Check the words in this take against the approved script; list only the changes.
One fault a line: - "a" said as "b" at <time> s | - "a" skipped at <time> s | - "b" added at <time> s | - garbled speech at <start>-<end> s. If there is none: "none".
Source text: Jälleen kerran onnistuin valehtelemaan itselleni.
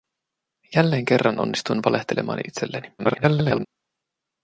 - garbled speech at 3.0-3.7 s